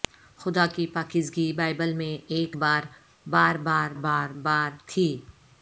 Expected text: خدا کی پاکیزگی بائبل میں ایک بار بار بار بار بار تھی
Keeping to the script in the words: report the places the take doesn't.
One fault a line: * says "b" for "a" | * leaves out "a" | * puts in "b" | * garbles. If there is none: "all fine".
all fine